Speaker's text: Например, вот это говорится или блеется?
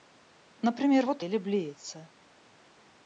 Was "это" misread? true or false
true